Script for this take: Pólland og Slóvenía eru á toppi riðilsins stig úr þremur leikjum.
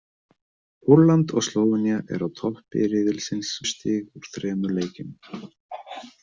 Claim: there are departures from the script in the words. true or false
false